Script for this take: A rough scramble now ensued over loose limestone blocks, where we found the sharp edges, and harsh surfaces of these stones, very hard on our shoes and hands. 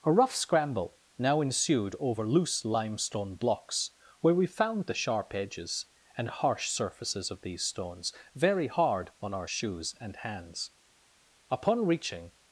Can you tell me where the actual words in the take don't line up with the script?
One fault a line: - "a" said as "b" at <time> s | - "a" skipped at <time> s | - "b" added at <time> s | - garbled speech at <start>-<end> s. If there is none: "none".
- "Upon reaching" added at 11.5 s